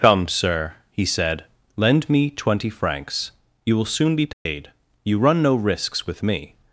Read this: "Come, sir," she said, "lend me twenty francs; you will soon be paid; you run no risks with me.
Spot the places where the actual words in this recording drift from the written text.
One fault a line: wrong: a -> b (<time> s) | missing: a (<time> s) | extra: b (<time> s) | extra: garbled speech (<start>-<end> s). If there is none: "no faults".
wrong: she -> he (0.9 s)